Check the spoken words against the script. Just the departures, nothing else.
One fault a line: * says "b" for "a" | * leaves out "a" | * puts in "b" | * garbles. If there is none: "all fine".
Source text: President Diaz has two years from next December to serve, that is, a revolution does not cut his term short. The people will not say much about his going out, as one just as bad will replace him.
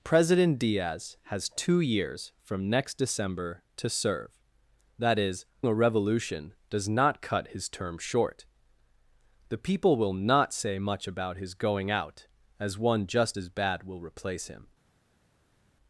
all fine